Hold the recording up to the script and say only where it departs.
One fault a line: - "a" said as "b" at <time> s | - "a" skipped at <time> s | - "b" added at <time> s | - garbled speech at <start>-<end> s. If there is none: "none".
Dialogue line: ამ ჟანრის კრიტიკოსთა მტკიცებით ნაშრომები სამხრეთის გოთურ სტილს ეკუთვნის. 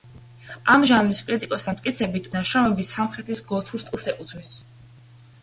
none